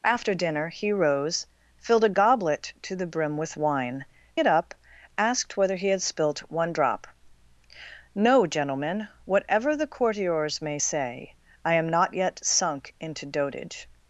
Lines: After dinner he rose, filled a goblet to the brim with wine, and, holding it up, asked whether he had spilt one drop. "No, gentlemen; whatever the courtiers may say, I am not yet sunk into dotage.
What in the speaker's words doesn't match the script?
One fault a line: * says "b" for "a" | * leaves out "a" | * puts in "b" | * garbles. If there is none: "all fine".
* leaves out "and holding"